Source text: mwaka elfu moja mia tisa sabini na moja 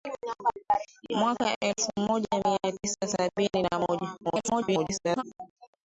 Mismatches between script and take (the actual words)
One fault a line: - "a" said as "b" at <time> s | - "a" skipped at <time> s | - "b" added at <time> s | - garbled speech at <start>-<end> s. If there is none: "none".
- garbled speech at 4.2-5.2 s